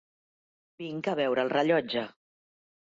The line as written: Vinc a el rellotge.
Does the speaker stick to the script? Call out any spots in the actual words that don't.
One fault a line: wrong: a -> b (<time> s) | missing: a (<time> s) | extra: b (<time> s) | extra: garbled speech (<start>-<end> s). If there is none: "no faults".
extra: veure (1.2 s)